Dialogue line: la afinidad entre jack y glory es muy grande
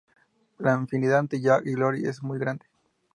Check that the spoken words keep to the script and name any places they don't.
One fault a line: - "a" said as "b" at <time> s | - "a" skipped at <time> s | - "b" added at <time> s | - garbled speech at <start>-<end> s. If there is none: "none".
none